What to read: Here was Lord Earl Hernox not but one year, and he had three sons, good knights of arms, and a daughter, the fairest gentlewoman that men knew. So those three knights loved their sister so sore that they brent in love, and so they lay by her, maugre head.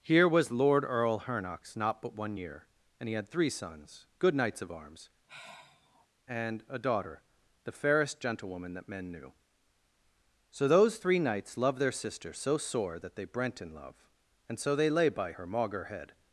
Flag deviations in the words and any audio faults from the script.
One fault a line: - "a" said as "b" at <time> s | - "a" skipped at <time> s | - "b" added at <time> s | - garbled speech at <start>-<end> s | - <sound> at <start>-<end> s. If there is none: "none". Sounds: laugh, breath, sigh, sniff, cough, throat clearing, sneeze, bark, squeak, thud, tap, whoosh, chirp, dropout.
- sigh at 5.3-6.1 s